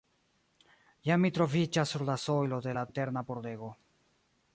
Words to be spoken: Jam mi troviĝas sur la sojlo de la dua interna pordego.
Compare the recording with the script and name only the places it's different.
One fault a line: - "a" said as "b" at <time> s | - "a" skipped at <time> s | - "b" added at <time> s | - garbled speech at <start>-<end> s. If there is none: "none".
- "dua" skipped at 2.9 s